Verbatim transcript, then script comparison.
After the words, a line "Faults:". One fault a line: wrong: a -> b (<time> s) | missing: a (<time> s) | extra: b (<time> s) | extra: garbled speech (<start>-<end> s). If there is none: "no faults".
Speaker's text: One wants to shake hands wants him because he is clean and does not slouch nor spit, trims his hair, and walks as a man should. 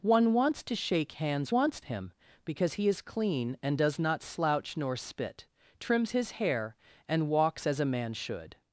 One wants to shake hands wants him because he is clean and does not slouch nor spit, trims his hair, and walks as a man should.
Faults:
no faults